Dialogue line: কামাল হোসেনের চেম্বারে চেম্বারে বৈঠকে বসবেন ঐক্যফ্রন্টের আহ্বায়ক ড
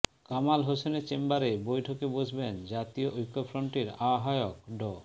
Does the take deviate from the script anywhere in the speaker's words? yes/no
yes